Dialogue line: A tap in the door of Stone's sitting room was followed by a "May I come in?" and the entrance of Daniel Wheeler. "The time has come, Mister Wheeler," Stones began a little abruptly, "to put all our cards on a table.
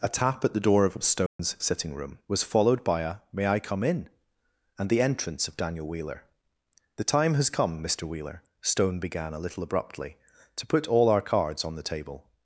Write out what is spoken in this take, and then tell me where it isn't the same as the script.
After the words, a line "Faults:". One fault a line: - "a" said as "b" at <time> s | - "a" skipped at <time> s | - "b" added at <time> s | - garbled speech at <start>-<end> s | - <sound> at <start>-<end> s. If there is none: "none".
A tap at the door of Stone's sitting room was followed by a "May I come in?" and the entrance of Daniel Wheeler. "The time has come, Mister Wheeler," Stone began a little abruptly, "to put all our cards on the table.
Faults:
- "in" said as "at" at 0.4 s
- dropout at 1.3-1.4 s
- "Stones" said as "Stone" at 8.6 s
- "a" said as "the" at 11.8 s